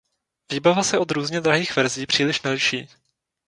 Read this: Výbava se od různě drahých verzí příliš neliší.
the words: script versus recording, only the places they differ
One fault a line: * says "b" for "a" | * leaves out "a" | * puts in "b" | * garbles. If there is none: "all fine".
all fine